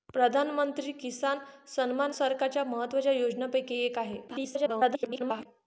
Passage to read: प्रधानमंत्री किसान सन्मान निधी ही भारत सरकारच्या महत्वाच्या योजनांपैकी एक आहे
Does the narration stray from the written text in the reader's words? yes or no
yes